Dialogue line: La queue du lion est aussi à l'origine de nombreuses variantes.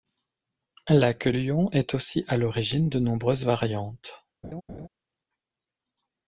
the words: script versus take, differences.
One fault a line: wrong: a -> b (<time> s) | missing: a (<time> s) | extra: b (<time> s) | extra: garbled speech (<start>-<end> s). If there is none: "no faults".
missing: du (1.3 s)